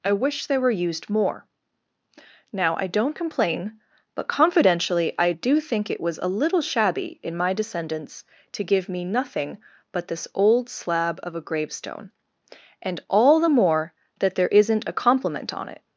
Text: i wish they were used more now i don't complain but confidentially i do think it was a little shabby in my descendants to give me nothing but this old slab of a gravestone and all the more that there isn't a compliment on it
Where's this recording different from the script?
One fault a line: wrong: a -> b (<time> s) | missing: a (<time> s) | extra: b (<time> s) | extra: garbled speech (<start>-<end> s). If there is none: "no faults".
no faults